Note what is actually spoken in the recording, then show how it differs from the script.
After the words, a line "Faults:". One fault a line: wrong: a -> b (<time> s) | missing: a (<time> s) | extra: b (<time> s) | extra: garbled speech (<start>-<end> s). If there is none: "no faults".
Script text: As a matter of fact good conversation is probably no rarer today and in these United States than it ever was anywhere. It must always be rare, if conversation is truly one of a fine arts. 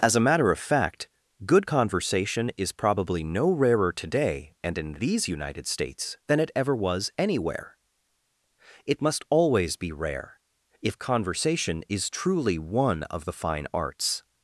As a matter of fact good conversation is probably no rarer today and in these United States than it ever was anywhere. It must always be rare, if conversation is truly one of the fine arts.
Faults:
wrong: a -> the (13.2 s)